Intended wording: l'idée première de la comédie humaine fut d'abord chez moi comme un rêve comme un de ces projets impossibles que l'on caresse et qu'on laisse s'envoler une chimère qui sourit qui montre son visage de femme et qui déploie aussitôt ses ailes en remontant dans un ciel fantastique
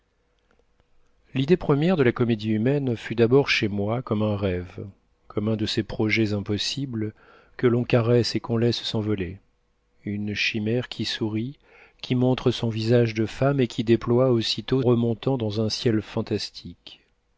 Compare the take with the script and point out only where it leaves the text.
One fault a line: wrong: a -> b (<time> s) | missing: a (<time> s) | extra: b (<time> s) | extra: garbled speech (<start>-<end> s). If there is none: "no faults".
missing: ses ailes en (14.8 s)